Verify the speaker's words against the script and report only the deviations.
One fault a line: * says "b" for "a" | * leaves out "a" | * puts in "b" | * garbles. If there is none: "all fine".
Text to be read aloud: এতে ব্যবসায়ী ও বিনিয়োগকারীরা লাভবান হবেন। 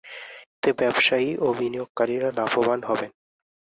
all fine